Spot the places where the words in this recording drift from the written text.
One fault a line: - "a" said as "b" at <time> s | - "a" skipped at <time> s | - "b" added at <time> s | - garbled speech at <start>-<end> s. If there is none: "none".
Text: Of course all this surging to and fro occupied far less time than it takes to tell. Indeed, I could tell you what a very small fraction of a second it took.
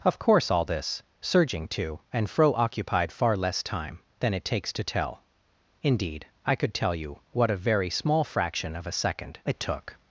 none